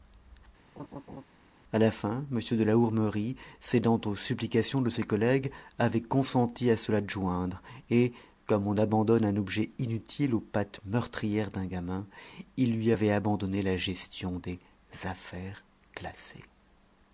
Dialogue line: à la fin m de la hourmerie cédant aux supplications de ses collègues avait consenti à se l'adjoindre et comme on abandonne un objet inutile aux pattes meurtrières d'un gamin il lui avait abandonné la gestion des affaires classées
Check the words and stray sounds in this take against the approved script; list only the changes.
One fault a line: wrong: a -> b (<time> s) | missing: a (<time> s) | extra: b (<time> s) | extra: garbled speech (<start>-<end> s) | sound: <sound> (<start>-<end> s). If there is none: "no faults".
sound: laugh (0.8-1.3 s)